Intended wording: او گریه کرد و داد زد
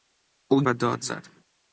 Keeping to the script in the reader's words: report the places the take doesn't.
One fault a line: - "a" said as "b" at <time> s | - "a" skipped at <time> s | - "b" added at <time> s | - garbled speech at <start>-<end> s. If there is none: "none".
- "گریه کرد" skipped at 0.6 s